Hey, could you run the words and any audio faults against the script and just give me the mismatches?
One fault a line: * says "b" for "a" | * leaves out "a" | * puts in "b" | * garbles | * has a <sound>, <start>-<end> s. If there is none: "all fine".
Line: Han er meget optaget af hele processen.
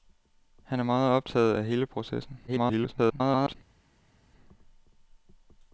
* garbles